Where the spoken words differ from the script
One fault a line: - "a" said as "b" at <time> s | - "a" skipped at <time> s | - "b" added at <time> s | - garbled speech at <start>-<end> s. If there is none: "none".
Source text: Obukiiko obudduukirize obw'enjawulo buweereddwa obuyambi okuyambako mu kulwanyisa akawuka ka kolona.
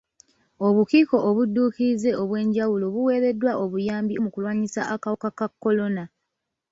- "okuyambako" skipped at 4.2 s